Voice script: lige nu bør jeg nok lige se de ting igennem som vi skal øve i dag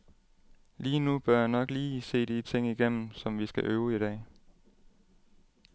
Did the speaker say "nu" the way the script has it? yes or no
yes